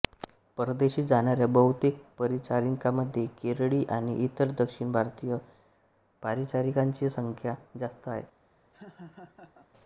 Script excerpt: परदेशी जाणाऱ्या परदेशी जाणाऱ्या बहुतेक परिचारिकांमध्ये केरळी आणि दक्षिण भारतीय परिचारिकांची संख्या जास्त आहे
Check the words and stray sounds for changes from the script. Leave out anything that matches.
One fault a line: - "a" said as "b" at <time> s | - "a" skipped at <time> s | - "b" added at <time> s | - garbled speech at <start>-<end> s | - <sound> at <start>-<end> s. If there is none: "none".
- "परदेशी जाणाऱ्या" skipped at 1.5 s
- "इतर" added at 4.2 s
- laugh at 8.7-9.7 s